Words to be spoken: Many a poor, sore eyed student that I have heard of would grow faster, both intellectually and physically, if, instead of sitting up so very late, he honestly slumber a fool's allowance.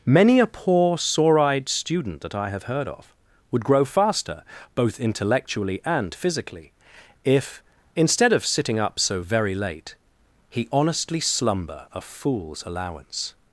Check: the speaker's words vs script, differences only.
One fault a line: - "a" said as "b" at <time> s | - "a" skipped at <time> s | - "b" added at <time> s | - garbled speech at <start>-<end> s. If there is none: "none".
none